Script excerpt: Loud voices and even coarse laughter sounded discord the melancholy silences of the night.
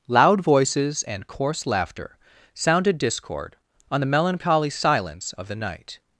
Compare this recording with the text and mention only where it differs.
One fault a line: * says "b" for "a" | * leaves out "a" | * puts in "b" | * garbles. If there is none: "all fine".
* leaves out "even"
* puts in "on"
* says "silence" for "silences"